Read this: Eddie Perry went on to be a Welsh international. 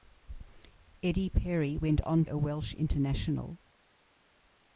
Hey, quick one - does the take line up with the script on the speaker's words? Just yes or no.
no